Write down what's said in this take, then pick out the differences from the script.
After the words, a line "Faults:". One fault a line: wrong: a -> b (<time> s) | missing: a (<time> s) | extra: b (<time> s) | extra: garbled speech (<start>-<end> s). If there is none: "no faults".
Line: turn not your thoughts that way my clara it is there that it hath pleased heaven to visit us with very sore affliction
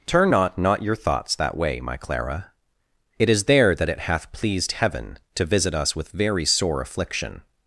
turn not not your thoughts that way my clara it is there that it hath pleased heaven to visit us with very sore affliction
Faults:
extra: not (0.6 s)